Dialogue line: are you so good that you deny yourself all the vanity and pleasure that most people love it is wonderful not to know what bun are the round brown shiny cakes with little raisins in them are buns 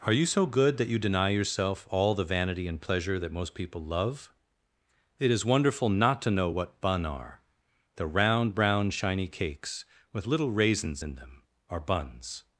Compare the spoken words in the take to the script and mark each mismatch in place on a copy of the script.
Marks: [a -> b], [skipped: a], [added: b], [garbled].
are you so good that you deny yourself all the vanity and pleasure that most people love it is wonderful not to know what bun are the round brown shiny cakes with little raisins in them are buns